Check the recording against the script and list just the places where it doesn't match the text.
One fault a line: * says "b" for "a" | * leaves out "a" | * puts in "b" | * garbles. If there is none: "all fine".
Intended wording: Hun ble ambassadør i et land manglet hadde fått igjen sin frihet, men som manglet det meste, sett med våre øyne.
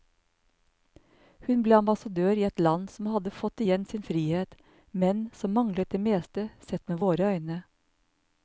* says "som" for "manglet"